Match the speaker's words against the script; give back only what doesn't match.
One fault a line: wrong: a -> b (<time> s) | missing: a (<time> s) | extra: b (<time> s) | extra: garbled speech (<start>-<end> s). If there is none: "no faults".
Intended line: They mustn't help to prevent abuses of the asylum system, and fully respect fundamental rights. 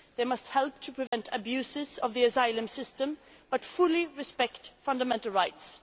wrong: mustn't -> must (0.2 s)
wrong: and -> but (3.5 s)